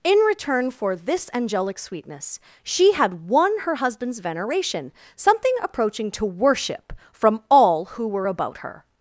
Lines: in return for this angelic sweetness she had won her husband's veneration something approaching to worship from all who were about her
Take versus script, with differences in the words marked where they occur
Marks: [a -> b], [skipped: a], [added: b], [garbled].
in return for this angelic sweetness she had won her husband's veneration something approaching to worship from all who were about her